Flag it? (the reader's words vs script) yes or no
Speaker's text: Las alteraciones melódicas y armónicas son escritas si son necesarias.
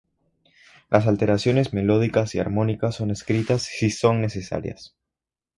no